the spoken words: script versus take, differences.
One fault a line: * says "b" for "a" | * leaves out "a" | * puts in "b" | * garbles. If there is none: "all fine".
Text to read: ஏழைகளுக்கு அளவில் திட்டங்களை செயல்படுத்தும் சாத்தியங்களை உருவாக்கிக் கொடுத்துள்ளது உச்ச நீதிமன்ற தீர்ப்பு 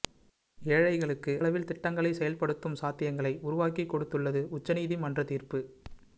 all fine